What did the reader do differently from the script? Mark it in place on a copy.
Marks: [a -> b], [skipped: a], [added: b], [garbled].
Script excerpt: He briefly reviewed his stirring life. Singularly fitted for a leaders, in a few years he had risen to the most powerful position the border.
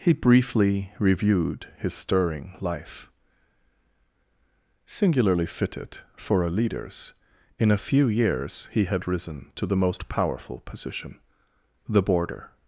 He briefly reviewed his stirring life. Singularly fitted for a leaders, in a few years he had risen to the most powerful position the border.